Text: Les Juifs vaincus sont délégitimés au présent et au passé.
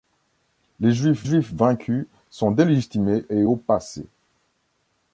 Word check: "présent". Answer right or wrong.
wrong